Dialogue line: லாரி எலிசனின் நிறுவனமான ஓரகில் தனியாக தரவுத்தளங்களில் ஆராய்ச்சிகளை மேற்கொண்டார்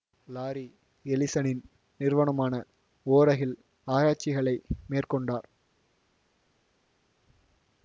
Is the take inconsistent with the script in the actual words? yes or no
yes